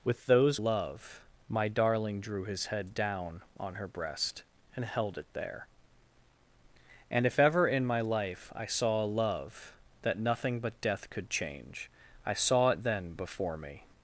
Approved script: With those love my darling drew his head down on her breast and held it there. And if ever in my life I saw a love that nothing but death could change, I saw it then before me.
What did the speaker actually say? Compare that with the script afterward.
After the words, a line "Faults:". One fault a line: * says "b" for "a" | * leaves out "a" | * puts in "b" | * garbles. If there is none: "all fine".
With those love my darling drew his head down on her breast and held it there. And if ever in my life I saw a love that nothing but death could change, I saw it then before me.
Faults:
all fine